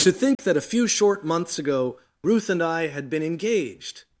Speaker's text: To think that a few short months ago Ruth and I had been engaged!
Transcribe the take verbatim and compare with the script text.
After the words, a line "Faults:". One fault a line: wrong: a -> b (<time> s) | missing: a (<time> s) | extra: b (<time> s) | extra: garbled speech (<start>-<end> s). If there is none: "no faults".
To think that a few short months ago Ruth and I had been engaged!
Faults:
no faults